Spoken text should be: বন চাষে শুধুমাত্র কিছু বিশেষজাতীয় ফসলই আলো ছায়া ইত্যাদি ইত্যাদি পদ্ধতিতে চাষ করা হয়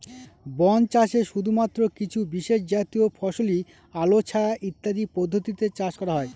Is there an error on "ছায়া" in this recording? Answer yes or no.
no